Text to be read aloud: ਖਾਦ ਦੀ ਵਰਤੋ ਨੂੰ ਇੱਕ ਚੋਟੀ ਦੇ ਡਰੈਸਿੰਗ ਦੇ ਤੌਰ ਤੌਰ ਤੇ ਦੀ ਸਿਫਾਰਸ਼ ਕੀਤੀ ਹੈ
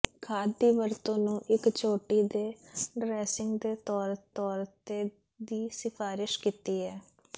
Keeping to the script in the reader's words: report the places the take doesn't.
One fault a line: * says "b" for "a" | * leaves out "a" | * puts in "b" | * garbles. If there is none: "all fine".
all fine